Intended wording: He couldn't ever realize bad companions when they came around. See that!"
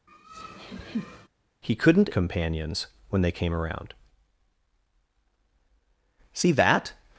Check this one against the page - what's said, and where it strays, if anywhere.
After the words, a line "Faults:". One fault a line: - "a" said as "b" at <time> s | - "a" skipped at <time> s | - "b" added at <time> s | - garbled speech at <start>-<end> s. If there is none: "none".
He couldn't companions when they came around. See that!"
Faults:
- "ever realize bad" skipped at 2.1 s